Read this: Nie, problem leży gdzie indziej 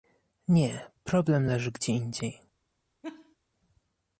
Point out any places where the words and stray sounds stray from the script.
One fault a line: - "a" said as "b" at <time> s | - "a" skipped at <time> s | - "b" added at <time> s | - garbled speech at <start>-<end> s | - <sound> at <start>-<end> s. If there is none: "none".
- laugh at 3.0-3.4 s